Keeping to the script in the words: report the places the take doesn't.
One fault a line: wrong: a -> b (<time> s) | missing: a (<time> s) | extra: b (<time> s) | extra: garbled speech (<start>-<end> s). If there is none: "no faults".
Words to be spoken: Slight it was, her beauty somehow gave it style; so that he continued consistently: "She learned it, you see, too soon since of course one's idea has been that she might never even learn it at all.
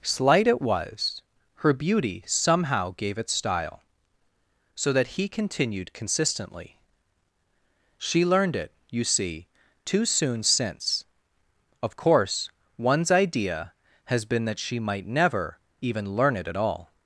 no faults